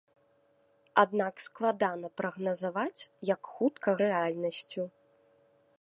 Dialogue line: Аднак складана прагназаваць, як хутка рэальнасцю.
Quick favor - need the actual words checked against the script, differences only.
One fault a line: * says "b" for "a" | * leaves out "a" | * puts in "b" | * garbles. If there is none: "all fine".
all fine